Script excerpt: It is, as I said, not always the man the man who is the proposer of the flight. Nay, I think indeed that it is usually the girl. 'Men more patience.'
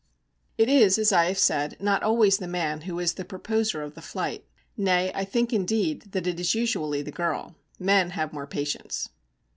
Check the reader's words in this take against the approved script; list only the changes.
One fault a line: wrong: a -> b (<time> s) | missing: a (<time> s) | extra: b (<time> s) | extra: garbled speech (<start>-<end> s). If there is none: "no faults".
extra: have (1.2 s)
missing: the man (2.8 s)
extra: have (8.1 s)